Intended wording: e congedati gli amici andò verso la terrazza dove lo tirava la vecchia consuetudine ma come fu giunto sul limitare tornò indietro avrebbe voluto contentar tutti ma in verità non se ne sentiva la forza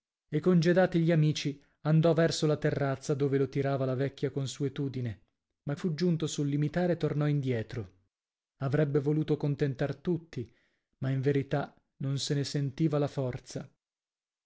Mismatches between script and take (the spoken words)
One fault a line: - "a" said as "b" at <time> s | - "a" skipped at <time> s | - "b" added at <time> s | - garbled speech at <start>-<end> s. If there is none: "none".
- "come" skipped at 5.8 s